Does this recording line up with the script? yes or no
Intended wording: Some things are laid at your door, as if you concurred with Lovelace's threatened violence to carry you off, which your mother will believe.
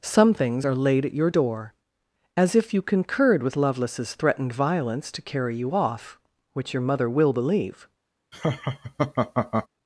yes